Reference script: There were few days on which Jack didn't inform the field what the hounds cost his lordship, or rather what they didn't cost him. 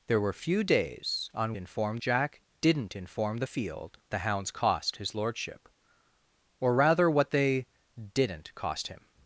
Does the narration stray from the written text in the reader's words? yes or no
yes